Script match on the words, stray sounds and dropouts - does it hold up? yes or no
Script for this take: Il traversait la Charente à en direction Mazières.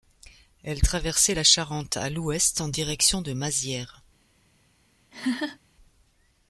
no